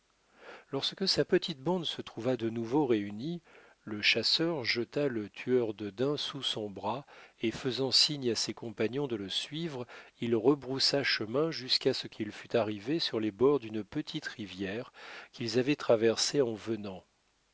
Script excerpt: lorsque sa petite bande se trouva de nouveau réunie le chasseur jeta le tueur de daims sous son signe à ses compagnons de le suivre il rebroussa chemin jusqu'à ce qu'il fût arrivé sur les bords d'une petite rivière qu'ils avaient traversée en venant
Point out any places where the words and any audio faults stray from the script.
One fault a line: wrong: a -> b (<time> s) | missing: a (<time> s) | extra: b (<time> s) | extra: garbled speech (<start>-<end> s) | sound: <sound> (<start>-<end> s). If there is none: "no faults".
extra: bras et faisant (6.7 s)